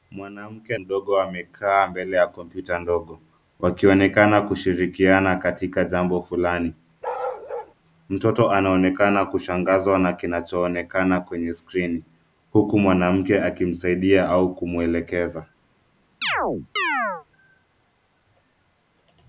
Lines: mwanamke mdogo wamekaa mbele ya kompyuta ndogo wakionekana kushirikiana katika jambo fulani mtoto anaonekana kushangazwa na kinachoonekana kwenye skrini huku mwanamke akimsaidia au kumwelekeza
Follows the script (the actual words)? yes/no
yes